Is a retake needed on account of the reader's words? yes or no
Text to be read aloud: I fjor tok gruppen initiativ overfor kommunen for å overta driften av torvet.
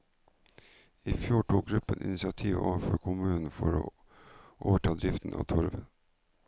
no